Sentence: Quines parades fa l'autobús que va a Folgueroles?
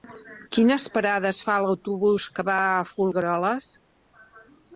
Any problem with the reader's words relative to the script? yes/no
no